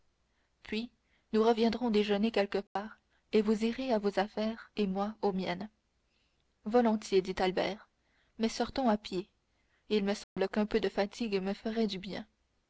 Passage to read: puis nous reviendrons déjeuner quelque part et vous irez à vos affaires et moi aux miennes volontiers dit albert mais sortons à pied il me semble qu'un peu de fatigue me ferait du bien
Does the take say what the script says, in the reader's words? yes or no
yes